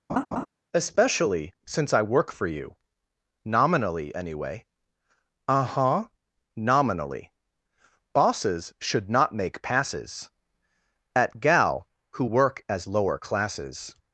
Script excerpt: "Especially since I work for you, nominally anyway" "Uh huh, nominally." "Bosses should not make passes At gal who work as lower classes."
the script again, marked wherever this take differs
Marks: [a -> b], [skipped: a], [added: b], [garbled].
"Especially since I work for you, nominally anyway" "Uh huh, nominally." "Bosses should not make passes At gal who work as lower classes."